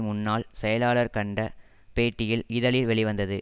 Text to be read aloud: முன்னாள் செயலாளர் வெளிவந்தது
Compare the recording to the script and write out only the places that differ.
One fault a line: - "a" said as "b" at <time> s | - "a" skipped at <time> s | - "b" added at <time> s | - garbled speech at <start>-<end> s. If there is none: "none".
- "கண்ட பேட்டியில் இதழில்" added at 1.1 s